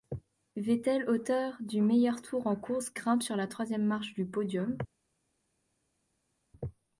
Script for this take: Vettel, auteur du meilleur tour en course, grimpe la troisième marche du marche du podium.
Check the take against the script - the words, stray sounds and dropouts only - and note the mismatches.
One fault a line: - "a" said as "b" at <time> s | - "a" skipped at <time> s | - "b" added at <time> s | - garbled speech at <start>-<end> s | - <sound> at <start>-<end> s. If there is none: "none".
- "sur" added at 3.2 s
- "marche du" skipped at 4.3 s